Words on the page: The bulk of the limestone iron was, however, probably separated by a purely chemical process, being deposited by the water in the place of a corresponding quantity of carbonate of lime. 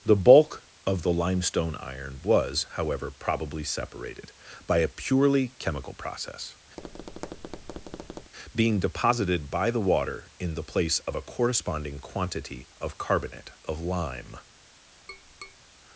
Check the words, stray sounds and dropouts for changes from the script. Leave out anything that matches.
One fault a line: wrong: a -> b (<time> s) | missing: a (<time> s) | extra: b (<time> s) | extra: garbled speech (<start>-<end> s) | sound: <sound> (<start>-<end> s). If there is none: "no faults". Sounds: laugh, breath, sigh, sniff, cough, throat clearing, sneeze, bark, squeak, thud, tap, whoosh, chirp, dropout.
sound: tap (6.8-8.3 s)
sound: tap (15.1-15.6 s)